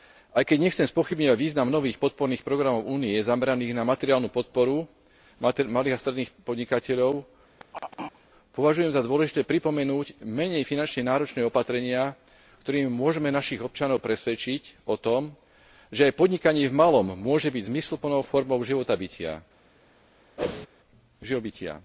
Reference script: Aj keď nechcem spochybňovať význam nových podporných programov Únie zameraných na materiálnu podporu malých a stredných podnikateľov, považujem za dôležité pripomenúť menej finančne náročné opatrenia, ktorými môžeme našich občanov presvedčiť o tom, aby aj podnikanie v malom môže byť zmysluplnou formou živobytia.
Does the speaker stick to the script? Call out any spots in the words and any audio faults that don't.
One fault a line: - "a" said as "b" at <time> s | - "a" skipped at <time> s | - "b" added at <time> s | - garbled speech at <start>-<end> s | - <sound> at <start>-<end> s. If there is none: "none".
- throat clearing at 7.6-8.3 s
- "aby" said as "že" at 15.9 s
- whoosh at 20.4-20.7 s